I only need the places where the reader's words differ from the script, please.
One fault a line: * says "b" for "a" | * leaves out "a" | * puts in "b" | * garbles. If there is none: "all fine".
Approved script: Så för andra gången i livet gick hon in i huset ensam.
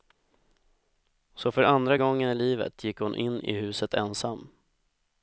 all fine